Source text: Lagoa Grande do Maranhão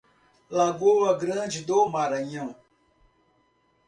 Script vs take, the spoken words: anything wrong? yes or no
no